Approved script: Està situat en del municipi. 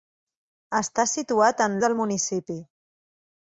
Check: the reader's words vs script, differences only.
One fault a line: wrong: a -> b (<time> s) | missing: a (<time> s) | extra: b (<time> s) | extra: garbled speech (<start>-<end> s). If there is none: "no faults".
no faults